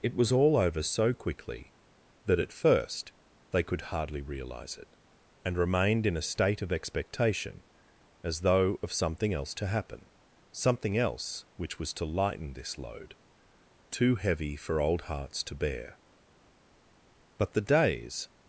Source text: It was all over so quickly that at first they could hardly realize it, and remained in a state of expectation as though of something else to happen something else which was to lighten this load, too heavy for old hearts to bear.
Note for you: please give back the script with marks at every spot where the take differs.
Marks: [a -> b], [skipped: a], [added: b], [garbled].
It was all over so quickly that at first they could hardly realize it, and remained in a state of expectation as though of something else to happen something else which was to lighten this load, too heavy for old hearts to bear. [added: But the days]